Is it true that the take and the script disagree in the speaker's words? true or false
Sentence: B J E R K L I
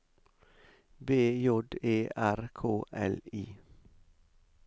false